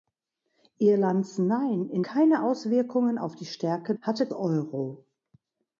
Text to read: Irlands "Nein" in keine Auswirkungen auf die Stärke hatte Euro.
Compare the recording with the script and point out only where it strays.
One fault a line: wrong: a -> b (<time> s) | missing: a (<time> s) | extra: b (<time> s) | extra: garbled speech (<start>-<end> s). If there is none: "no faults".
no faults